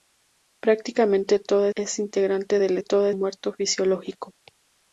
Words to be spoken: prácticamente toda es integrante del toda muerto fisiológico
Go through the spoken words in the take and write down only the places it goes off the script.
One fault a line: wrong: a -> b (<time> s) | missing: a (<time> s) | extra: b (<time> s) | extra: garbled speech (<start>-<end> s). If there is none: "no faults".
no faults